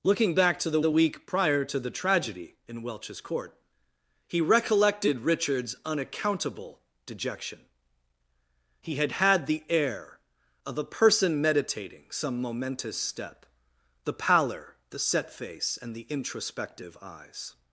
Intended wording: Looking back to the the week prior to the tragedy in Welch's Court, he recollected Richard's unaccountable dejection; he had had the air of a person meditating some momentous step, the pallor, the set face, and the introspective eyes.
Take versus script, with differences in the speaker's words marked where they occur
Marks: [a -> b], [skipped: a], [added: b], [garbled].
Looking back to the the week prior to the tragedy in Welch's Court, he recollected Richard's unaccountable dejection; he had had the air of a person meditating some momentous step, the pallor, the set face, and the introspective eyes.